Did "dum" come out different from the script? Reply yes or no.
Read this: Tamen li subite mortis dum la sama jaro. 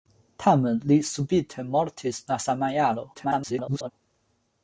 yes